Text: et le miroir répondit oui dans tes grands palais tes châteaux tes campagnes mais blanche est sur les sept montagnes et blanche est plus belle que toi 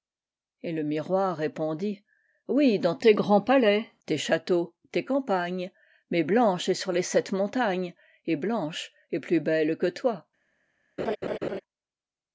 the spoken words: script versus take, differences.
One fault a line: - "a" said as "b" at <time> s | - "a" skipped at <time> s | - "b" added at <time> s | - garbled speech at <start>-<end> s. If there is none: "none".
none